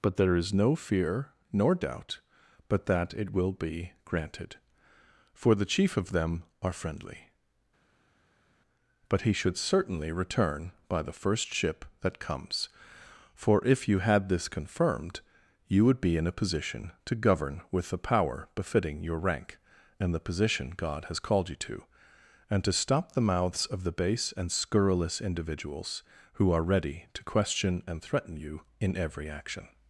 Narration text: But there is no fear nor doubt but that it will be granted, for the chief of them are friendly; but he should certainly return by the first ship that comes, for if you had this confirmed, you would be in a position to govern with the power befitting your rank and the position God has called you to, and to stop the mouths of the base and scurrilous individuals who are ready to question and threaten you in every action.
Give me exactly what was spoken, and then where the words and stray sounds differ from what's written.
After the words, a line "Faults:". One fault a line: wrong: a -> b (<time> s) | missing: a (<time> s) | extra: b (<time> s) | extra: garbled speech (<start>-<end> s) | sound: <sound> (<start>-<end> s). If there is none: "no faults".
But there is no fear nor doubt but that it will be granted, for the chief of them are friendly; but he should certainly return by the first ship that comes, for if you had this confirmed, you would be in a position to govern with the power befitting your rank and the position God has called you to, and to stop the mouths of the base and scurrilous individuals who are ready to question and threaten you in every action.
Faults:
no faults